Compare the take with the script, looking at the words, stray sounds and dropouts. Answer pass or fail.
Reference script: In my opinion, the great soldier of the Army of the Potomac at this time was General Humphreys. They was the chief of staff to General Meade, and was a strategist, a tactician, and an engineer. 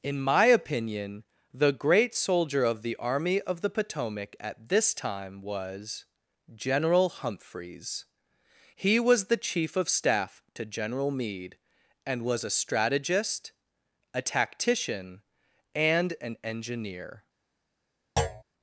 fail